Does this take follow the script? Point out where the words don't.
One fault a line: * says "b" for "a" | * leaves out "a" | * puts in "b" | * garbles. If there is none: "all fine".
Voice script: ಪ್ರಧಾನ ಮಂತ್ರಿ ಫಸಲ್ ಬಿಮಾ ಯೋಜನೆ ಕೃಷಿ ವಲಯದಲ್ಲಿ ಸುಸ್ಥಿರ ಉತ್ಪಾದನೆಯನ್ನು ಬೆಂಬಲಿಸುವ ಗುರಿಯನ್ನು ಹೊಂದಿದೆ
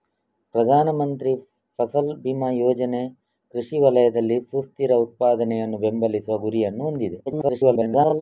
* garbles